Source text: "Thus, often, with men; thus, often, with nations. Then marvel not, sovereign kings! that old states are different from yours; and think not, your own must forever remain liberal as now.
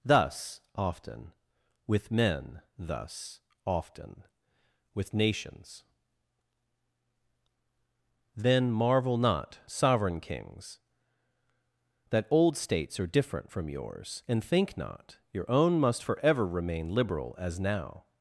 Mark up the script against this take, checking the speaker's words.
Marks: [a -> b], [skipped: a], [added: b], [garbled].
"Thus, often, with men; thus, often, with nations. Then marvel not, sovereign kings! that old states are different from yours; and think not, your own must forever remain liberal as now.